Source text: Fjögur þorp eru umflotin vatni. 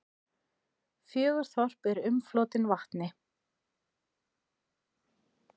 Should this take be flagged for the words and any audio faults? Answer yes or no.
no